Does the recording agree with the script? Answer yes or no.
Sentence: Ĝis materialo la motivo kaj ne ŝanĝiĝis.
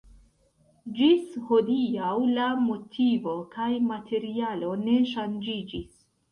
no